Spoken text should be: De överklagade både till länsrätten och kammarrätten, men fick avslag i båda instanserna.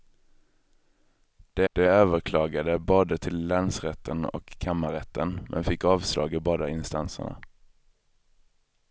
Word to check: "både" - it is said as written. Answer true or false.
true